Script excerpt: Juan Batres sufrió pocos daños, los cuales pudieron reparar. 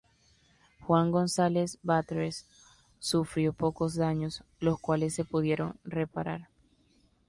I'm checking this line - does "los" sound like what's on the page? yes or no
yes